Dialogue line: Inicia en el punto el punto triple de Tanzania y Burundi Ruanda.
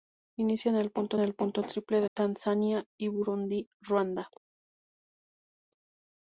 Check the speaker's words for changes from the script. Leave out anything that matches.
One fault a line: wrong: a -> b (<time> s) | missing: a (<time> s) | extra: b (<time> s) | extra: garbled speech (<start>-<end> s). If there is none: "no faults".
no faults